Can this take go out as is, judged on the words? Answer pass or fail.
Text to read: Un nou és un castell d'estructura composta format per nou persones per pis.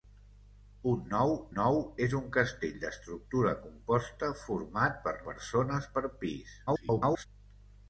fail